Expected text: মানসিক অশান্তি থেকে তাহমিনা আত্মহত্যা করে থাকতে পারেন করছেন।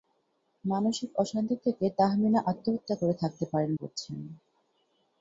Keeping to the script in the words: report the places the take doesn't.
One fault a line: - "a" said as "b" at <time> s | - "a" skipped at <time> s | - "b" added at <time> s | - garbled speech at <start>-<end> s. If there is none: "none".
none